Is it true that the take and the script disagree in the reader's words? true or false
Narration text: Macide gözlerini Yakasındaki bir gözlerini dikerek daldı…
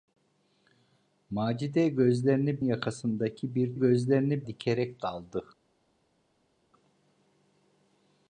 false